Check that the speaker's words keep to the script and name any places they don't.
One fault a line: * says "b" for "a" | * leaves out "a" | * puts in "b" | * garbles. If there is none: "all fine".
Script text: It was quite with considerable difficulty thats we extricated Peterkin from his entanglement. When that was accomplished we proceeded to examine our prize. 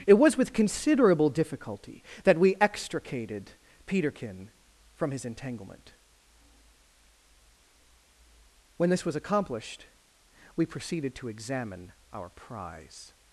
* leaves out "quite"
* says "that" for "thats"
* says "this" for "that"